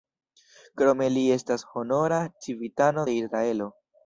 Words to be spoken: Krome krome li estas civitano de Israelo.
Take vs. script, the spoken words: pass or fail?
fail